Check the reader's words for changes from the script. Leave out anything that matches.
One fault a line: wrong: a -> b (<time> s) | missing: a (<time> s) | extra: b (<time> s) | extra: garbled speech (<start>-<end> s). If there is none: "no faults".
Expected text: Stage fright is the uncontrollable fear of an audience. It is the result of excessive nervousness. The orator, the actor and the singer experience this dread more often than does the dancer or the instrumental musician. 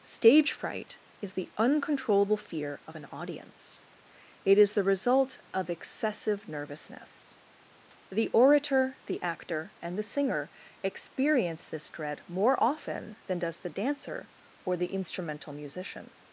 no faults